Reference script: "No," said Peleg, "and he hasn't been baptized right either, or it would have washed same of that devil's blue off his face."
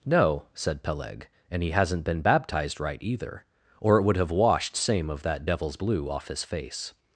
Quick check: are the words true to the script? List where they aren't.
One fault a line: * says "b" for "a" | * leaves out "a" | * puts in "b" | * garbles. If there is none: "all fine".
all fine